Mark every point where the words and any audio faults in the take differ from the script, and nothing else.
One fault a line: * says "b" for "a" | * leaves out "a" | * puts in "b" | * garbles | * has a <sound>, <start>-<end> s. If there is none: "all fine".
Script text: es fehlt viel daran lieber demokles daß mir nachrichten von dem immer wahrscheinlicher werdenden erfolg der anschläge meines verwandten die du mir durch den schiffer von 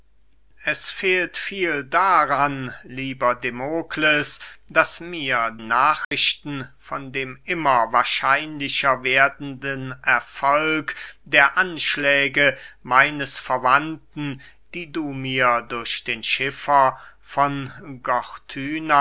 * has a dropout, 6.0-6.1 s